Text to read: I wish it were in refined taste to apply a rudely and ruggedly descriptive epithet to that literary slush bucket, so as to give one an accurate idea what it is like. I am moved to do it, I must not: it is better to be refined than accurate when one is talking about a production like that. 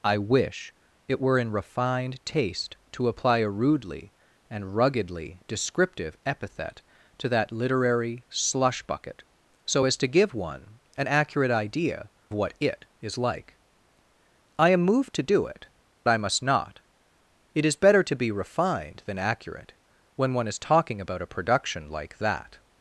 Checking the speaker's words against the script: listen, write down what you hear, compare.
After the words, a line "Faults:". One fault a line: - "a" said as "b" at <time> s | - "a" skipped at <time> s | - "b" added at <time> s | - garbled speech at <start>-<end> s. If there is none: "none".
I wish it were in refined taste to apply a rudely and ruggedly descriptive epithet to that literary slush bucket, so as to give one an accurate idea what it is like. I am moved to do it, I must not: it is better to be refined than accurate when one is talking about a production like that.
Faults:
none